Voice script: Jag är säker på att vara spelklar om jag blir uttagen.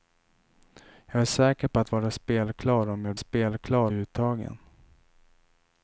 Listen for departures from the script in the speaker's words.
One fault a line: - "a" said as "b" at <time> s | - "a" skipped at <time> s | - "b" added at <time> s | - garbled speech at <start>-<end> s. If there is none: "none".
- "blir" said as "spelklar" at 3.2 s